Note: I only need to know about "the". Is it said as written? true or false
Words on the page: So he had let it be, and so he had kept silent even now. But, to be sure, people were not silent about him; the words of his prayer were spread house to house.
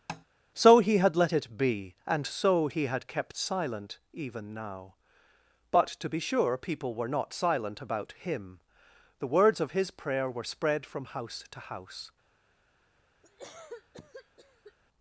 true